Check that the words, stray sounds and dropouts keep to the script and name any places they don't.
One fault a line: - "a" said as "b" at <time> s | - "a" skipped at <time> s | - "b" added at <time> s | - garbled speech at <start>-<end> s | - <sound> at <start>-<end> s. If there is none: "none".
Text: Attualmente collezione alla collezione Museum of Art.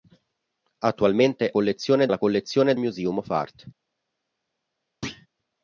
- thud at 5.0-5.3 s